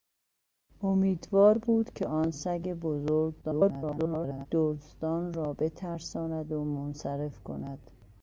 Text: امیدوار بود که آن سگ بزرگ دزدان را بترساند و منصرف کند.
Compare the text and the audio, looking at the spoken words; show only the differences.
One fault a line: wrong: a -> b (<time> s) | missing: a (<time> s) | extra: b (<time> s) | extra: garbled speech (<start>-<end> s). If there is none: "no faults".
extra: garbled speech (3.4-4.5 s)